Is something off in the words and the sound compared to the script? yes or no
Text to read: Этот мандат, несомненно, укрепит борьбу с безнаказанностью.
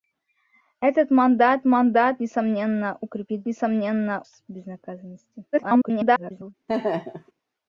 yes